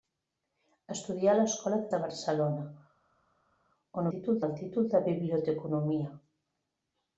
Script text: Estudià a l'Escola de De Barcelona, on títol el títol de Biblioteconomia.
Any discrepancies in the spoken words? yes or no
no